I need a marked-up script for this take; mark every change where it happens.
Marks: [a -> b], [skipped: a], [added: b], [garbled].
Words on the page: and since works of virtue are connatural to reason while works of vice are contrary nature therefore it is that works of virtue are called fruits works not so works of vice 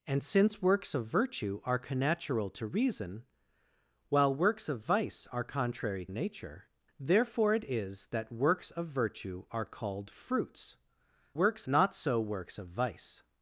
and since works of virtue are connatural to reason while works of vice are contrary nature therefore it is that works of virtue are called fruits works not so works of vice